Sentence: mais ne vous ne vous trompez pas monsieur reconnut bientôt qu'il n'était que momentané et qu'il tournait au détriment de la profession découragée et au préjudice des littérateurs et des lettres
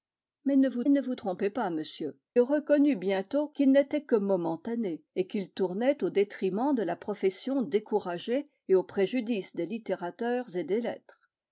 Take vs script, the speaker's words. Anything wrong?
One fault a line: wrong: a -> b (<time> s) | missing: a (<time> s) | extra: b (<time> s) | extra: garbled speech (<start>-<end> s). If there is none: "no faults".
no faults